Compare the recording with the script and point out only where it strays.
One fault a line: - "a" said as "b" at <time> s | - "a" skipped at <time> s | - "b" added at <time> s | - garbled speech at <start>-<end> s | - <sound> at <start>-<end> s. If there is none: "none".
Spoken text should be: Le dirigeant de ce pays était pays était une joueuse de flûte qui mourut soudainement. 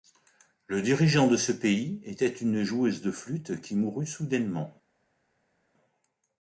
- "pays était" skipped at 2.3 s